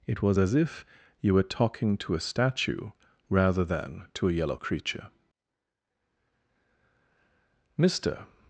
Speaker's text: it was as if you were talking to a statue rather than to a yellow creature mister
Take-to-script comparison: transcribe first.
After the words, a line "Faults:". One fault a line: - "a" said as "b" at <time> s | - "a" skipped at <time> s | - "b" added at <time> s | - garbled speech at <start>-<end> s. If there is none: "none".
it was as if you were talking to a statue rather than to a yellow creature mister
Faults:
none